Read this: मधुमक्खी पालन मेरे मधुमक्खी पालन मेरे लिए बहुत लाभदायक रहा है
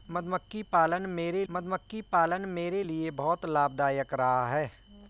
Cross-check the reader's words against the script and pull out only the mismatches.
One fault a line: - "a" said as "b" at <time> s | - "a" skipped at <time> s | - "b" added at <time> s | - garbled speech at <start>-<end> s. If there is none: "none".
none